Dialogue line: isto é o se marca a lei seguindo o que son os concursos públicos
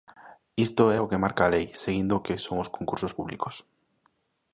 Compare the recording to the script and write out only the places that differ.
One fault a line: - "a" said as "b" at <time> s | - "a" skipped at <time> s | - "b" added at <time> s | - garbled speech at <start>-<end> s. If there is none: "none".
- "se" said as "que" at 1.1 s